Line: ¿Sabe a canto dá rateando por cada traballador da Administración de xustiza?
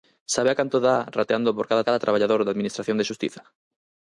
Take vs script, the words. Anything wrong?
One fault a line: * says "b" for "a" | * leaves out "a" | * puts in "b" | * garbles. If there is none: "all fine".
* puts in "cada"